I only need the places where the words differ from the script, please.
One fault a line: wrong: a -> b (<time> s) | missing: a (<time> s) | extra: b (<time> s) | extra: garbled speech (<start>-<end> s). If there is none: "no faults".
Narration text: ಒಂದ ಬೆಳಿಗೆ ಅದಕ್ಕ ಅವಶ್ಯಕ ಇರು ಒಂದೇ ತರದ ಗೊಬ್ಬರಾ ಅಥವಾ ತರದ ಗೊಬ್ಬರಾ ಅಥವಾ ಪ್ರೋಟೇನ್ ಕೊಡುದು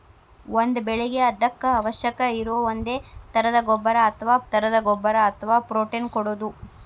no faults